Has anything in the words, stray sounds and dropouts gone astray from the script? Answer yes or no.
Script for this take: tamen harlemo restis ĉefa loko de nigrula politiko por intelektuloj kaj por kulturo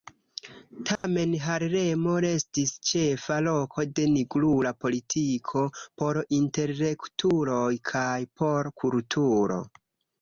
yes